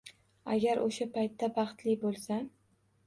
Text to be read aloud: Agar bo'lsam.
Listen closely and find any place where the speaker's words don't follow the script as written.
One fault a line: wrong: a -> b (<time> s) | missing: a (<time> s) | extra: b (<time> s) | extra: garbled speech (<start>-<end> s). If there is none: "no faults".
extra: o'sha paytda baxtli (0.8 s)